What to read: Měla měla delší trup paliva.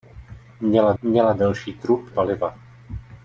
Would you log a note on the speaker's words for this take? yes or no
no